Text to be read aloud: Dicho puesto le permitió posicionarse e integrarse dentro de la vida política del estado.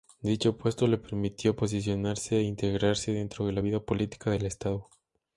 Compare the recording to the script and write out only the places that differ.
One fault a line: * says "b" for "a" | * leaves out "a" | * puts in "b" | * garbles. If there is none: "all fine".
all fine